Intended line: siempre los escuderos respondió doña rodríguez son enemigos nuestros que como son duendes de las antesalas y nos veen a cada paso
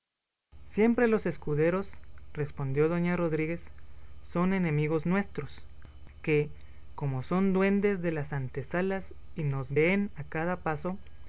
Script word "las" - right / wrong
right